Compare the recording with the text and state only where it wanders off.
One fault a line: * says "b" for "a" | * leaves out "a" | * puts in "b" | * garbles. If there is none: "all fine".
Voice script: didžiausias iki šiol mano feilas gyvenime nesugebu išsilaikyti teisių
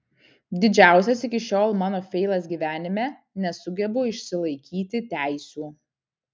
all fine